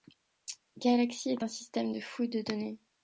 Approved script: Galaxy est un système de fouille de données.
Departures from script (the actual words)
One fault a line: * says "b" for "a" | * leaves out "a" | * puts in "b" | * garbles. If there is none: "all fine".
all fine